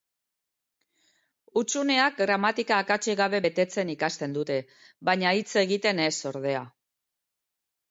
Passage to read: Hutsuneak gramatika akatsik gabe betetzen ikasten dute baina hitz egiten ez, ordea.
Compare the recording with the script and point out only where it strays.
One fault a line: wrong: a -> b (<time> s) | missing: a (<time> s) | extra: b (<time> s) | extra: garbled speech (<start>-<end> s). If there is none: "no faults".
no faults